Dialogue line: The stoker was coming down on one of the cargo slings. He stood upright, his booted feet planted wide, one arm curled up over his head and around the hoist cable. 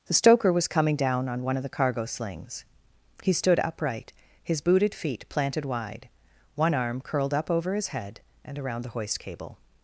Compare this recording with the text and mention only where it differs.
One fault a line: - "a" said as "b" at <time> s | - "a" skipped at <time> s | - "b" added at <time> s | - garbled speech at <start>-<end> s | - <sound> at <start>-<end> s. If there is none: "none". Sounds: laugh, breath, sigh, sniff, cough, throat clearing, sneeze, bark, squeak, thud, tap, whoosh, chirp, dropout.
none